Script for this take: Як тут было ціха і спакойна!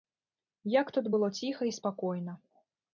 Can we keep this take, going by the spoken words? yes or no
yes